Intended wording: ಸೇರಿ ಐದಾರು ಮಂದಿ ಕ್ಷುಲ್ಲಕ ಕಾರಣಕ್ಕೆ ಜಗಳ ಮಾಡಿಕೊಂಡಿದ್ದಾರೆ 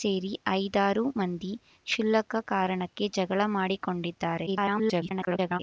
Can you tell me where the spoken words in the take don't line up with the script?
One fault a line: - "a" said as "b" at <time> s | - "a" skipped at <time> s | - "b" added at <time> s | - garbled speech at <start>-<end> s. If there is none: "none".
- garbled speech at 4.5-5.6 s